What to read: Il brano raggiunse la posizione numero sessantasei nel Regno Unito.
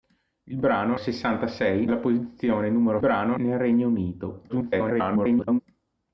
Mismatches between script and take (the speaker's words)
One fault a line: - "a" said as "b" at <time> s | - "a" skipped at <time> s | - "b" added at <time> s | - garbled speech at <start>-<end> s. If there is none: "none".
- "raggiunse" said as "sessantasei" at 0.9 s
- "sessantasei" said as "brano" at 3.0 s
- garbled speech at 4.5-5.6 s